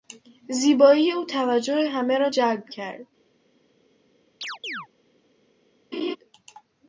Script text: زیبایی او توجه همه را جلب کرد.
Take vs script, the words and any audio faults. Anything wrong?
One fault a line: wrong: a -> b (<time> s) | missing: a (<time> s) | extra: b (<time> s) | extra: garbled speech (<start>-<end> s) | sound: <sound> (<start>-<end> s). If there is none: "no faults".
sound: chirp (4.4-4.9 s)
sound: laugh (5.9-6.2 s)